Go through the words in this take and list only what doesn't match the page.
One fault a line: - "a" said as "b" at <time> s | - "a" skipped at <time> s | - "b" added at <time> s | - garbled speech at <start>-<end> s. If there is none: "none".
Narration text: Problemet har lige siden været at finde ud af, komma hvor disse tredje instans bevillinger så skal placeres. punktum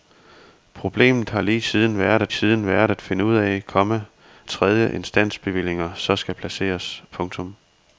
- "siden været at" added at 2.3 s
- "hvor disse" skipped at 4.0 s